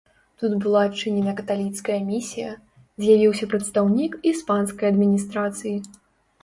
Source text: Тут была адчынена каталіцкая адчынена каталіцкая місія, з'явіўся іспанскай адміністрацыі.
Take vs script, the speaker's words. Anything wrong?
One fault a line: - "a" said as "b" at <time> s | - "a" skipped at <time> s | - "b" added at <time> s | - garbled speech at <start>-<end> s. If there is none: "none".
- "адчынена каталіцкая" skipped at 2.0 s
- "прадстаўнік" added at 3.5 s